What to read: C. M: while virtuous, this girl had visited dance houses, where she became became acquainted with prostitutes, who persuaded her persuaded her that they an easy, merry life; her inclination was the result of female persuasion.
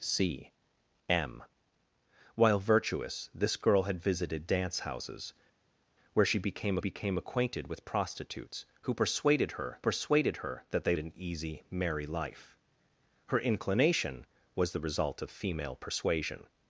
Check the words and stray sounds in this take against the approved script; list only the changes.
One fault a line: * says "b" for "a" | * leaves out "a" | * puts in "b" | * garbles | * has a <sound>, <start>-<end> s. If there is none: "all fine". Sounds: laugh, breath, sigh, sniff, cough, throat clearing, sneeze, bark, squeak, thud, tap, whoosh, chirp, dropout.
all fine